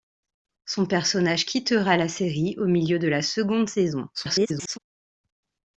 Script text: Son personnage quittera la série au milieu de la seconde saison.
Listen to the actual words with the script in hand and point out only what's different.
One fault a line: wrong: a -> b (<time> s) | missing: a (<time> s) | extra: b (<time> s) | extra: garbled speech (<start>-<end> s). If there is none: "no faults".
extra: garbled speech (4.1-4.8 s)